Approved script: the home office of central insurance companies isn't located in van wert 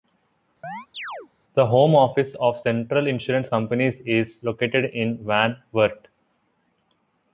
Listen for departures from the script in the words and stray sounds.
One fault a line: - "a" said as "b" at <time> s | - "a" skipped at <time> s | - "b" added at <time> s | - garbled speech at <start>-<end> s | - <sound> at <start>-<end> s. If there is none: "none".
- chirp at 0.6-1.3 s
- "isn't" said as "is" at 4.0 s